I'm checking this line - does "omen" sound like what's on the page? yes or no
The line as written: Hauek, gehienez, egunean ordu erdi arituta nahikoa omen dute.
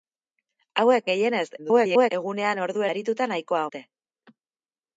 no